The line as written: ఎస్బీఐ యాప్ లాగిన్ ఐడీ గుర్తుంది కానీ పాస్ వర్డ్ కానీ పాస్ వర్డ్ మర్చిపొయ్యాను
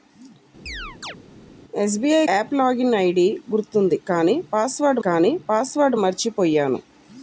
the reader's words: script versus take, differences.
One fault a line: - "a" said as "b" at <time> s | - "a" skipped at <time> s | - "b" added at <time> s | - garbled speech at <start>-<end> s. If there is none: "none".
none